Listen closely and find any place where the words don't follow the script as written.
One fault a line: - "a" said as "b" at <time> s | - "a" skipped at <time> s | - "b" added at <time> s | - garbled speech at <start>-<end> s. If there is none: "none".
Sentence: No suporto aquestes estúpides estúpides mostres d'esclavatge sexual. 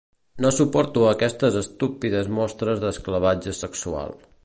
- "estúpides" skipped at 2.3 s